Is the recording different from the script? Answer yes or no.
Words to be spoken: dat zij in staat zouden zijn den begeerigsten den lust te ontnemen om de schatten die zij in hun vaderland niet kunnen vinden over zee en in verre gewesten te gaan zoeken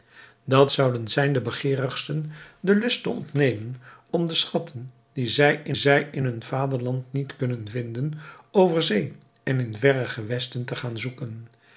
yes